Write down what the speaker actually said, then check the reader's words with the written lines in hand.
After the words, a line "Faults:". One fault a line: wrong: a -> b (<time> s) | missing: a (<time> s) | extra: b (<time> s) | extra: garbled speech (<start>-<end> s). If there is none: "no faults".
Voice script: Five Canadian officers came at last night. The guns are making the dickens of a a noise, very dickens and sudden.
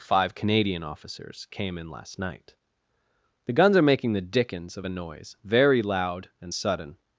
Five Canadian officers came in last night. The guns are making the dickens of a noise, very loud and sudden.
Faults:
wrong: at -> in (1.8 s)
missing: a (4.9 s)
wrong: dickens -> loud (5.8 s)